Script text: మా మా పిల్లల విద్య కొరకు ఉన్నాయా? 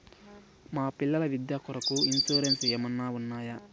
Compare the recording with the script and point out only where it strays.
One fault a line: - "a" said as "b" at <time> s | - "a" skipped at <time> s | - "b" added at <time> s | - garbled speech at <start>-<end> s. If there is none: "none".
- "మా" skipped at 0.9 s
- "ఇన్సూరెన్సు ఏమన్నా" added at 2.0 s